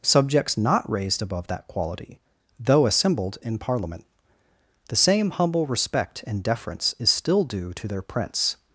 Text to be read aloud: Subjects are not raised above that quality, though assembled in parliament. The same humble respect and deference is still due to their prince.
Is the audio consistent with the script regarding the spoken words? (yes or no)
no